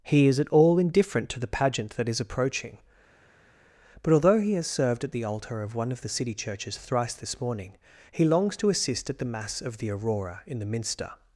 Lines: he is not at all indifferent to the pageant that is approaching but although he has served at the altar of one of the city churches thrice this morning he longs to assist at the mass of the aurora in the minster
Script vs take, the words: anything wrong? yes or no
yes